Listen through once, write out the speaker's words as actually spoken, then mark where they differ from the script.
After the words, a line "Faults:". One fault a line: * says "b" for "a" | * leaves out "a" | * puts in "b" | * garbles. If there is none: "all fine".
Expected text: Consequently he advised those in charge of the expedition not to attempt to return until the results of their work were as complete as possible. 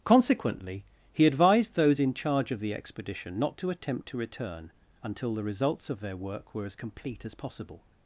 Consequently he advised those in charge of the expedition not to attempt to return until the results of their work were as complete as possible.
Faults:
all fine